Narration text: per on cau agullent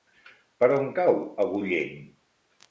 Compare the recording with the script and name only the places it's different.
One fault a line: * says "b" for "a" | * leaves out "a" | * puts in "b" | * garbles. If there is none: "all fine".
all fine